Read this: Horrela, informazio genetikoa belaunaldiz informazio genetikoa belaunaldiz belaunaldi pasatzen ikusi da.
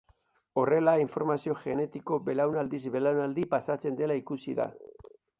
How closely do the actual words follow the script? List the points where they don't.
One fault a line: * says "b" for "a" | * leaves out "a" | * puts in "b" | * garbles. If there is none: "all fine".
* leaves out "informazio genetikoa belaunaldiz"
* puts in "dela"